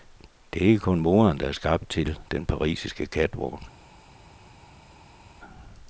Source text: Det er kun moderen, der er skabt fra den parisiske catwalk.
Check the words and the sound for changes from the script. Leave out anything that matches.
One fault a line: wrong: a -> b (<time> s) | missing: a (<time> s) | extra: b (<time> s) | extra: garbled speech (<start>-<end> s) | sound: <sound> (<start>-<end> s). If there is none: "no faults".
extra: ikke (0.7 s)
wrong: fra -> til (1.9 s)